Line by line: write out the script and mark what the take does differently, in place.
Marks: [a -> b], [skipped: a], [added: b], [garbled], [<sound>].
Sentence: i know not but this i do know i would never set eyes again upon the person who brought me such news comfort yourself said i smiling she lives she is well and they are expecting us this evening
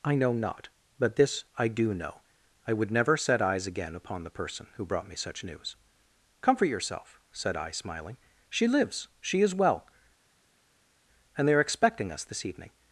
i know not but this i do know i would never set eyes again upon the person who brought me such news comfort yourself said i smiling she lives she is well and they are expecting us this evening